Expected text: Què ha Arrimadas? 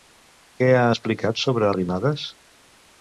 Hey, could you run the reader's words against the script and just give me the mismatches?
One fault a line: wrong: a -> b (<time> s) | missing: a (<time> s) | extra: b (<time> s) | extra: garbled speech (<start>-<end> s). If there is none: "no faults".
extra: explicat sobre (0.9 s)